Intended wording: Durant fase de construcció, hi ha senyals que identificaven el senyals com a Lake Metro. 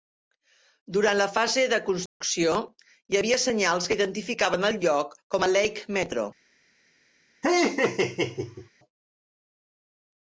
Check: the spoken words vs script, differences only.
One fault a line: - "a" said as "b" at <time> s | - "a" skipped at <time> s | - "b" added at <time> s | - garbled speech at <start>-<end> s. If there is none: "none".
- "la" added at 1.2 s
- "ha" said as "havia" at 3.2 s
- "senyals" said as "lloc" at 4.9 s